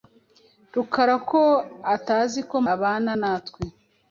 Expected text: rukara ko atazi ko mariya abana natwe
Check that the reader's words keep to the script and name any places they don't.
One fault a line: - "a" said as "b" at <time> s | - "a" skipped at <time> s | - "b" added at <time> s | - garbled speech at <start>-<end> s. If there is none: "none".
- "mariya" skipped at 2.6 s